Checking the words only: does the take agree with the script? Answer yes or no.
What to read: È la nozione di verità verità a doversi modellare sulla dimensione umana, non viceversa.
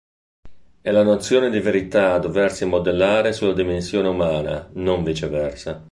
no